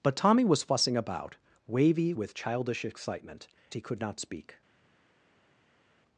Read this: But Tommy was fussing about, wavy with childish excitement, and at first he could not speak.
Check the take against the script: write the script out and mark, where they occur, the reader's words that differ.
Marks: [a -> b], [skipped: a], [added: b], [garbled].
But Tommy was fussing about, wavy with childish excitement, [skipped: and at first] he could not speak.